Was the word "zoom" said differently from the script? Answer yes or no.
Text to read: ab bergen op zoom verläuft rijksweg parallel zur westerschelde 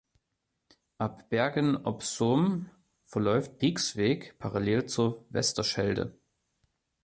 no